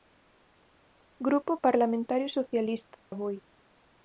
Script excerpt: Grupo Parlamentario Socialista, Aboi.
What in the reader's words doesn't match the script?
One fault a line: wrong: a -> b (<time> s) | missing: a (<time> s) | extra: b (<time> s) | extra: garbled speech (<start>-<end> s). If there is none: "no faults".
no faults